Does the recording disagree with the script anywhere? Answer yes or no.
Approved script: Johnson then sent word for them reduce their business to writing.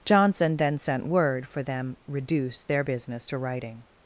no